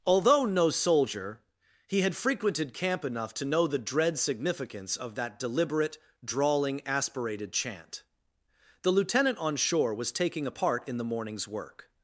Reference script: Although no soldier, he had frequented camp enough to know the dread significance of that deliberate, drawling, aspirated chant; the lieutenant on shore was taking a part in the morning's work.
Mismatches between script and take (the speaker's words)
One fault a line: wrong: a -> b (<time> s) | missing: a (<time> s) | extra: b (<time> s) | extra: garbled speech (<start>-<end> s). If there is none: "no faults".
no faults